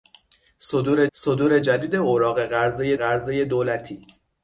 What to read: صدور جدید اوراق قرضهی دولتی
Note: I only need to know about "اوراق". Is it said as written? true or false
true